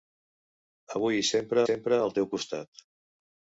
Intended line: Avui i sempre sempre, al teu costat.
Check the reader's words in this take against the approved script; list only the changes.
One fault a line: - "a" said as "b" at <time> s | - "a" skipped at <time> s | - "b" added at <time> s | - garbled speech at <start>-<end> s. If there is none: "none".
none